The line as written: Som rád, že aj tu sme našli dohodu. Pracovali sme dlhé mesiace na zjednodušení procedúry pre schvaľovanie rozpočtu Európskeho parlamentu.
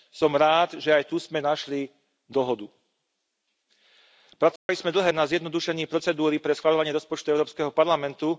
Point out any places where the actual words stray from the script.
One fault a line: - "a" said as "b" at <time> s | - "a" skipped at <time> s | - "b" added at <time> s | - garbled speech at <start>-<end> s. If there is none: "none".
- "mesiace" skipped at 5.1 s